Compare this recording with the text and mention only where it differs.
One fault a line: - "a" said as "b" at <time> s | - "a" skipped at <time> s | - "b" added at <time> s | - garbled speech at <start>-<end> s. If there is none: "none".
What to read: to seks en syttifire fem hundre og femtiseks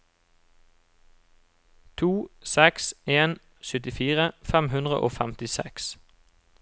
none